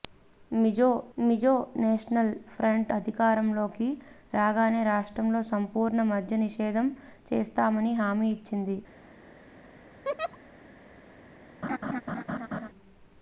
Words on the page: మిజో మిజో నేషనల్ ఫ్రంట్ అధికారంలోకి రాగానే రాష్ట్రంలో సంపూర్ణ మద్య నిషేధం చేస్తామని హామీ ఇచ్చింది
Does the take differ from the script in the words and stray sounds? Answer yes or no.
yes